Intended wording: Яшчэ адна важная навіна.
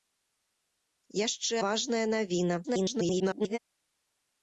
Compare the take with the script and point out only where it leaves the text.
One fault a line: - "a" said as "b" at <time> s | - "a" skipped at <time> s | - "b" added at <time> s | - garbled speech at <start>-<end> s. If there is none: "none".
- "адна" skipped at 1.6 s
- garbled speech at 2.6-3.6 s